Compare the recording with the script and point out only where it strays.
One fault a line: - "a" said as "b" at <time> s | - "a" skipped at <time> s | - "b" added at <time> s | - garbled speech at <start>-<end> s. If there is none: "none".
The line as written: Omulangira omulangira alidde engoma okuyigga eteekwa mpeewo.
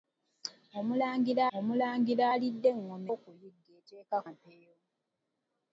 none